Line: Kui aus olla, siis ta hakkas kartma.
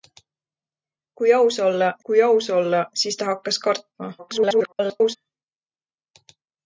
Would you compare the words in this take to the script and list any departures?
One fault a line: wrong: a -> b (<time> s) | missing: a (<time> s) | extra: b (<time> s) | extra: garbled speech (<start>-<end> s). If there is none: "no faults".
extra: kui aus olla (2.1 s)
extra: garbled speech (4.2-5.2 s)